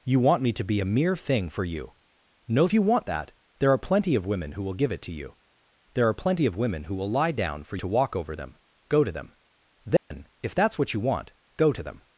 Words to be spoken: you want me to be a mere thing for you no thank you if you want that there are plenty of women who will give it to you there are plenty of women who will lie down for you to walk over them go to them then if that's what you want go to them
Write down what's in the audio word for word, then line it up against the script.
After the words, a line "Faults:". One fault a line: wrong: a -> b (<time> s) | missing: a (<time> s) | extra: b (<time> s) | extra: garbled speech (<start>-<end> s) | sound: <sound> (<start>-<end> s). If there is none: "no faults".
you want me to be a mere thing for you no you want that there are plenty of women who will give it to you there are plenty of women who will lie down for to walk over them go to them then if that's what you want go to them
Faults:
missing: thank (2.7 s)
missing: if you (2.8 s)
missing: you (7.8 s)
sound: dropout (10.0-10.1 s)